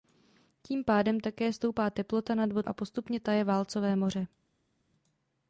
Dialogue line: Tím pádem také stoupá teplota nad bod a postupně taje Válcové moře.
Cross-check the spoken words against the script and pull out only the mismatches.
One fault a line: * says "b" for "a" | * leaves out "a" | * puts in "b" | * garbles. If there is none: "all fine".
all fine